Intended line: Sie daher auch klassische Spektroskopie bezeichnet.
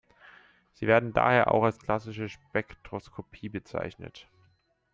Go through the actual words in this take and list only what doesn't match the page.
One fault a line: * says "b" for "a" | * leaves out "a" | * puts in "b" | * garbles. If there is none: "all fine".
* puts in "werden"
* puts in "als"